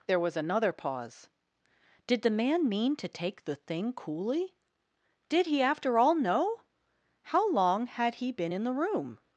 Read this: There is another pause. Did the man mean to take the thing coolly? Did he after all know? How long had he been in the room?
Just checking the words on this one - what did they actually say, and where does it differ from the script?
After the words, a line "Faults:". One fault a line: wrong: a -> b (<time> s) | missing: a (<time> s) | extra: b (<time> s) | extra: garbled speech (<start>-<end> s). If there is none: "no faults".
There was another pause. Did the man mean to take the thing coolly? Did he after all know? How long had he been in the room?
Faults:
wrong: is -> was (0.2 s)